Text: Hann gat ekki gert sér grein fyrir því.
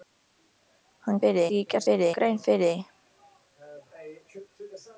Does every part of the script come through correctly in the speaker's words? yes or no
no